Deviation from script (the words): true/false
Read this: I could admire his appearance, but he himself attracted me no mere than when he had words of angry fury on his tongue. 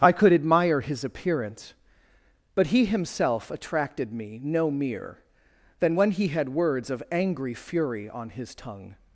false